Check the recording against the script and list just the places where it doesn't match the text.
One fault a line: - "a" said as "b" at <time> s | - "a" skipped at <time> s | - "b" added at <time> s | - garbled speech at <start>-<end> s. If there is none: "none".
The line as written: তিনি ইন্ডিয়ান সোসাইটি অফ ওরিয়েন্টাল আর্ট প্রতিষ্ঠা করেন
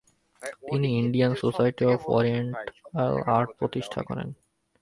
none